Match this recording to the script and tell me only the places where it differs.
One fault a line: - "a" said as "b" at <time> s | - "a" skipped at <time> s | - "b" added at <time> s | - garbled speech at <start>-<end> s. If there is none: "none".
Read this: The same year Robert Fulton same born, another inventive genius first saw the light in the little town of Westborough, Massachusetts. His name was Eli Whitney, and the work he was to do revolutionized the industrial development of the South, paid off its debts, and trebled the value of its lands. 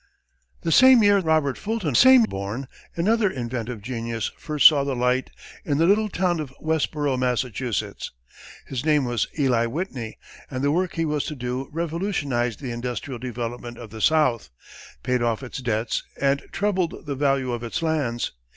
none